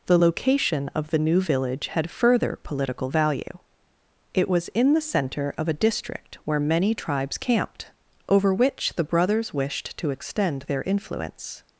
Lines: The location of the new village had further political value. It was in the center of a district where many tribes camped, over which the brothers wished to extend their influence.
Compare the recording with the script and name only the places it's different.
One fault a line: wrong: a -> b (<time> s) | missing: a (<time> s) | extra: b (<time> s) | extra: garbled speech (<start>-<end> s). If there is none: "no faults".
no faults